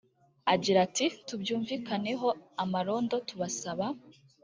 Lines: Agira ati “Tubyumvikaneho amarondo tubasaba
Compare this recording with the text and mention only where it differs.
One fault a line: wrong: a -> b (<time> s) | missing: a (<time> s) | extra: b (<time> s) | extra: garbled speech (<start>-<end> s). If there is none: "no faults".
no faults